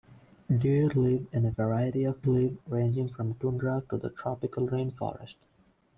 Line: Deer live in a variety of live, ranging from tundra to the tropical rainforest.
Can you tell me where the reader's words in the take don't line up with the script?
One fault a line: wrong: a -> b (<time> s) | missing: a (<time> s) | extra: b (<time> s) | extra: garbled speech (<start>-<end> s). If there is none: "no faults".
no faults